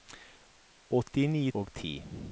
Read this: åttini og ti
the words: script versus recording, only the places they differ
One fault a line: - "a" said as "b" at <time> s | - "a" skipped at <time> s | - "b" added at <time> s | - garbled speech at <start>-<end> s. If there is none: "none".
none